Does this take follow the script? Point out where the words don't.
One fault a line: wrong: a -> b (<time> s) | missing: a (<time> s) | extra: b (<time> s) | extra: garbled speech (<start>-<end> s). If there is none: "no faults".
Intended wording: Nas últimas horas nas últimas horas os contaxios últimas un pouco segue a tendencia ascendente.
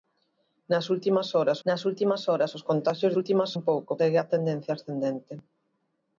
no faults